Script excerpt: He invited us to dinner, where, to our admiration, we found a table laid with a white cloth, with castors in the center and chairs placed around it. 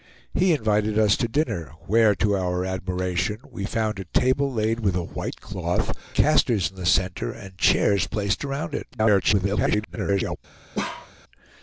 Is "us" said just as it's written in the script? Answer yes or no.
yes